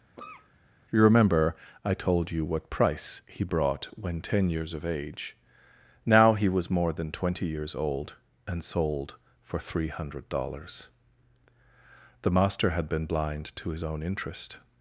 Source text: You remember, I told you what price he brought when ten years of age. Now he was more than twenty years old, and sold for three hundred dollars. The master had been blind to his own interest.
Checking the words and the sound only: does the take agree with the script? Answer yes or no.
no